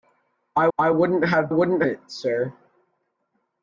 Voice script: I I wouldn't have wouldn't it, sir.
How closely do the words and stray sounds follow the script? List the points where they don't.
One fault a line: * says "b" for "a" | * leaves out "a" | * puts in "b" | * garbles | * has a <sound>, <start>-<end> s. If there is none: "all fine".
all fine